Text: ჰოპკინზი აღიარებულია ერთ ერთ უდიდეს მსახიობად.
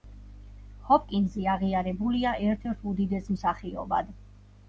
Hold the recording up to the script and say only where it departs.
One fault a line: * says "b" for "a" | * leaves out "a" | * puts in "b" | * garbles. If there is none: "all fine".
all fine